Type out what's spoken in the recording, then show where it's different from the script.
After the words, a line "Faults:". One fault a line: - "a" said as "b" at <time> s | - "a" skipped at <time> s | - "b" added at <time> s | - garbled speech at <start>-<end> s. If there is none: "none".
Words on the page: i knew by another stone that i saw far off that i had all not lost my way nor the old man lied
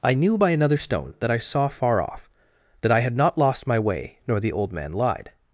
i knew by another stone that i saw far off that i had not lost my way nor the old man lied
Faults:
- "all" skipped at 3.2 s